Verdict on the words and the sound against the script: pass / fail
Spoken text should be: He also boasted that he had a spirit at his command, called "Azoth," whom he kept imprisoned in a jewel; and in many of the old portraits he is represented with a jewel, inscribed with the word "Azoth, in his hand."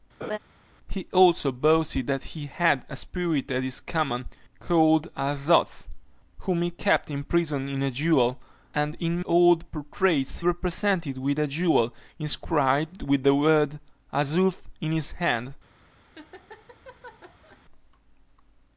fail